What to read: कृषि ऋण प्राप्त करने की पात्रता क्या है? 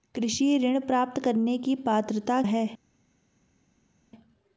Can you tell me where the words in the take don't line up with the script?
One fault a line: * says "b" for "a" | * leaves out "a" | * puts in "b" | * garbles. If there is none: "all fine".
* leaves out "क्या"